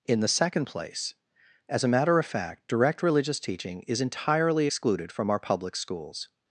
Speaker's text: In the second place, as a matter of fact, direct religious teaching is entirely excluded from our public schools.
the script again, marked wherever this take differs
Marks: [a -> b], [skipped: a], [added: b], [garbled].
In the second place, as a matter of fact, direct religious teaching is entirely excluded from our public schools.